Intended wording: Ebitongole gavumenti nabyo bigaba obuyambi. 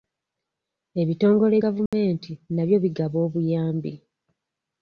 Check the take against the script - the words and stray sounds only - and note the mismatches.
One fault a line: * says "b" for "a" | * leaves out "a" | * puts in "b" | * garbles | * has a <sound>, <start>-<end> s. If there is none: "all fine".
* has a dropout, 1.9-1.9 s